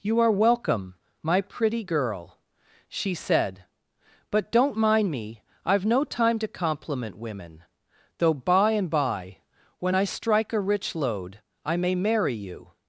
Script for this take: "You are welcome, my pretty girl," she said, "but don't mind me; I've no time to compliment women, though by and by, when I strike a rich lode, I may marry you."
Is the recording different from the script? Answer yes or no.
no